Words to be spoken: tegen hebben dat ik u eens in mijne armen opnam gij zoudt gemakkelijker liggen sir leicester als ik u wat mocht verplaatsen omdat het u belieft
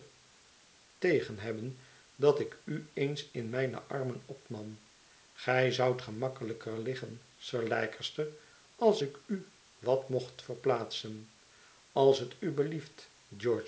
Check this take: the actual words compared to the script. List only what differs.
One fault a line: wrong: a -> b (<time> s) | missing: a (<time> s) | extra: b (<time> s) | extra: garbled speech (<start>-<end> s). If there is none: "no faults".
wrong: omdat -> als (11.9 s)